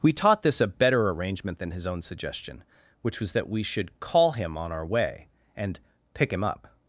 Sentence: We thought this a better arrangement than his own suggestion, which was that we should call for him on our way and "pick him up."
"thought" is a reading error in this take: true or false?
true